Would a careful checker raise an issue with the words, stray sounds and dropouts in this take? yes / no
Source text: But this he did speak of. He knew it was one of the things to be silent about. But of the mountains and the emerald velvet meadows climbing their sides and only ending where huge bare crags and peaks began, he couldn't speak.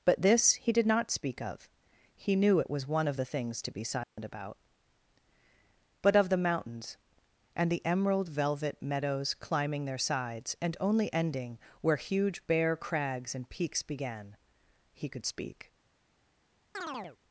yes